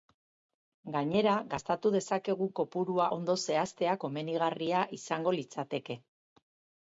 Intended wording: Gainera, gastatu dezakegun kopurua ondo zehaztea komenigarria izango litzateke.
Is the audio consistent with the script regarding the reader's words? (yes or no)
yes